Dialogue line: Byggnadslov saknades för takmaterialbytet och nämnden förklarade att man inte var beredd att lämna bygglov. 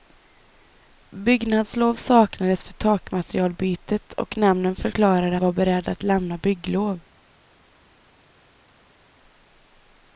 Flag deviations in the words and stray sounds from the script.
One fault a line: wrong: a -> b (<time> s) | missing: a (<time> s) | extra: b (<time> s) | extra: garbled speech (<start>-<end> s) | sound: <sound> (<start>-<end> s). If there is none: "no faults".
missing: att man inte (5.4 s)